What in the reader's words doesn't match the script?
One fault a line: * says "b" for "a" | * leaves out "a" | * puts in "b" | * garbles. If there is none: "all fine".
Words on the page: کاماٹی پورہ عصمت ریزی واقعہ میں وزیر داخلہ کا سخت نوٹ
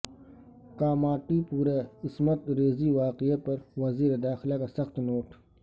* says "پر" for "میں"